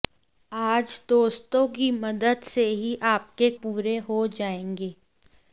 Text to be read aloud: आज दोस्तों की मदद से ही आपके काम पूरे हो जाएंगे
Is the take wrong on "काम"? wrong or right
wrong